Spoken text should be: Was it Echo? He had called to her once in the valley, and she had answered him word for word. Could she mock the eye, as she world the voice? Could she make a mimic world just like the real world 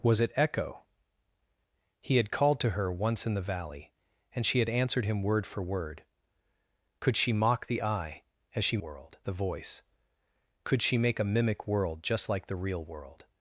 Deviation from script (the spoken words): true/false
false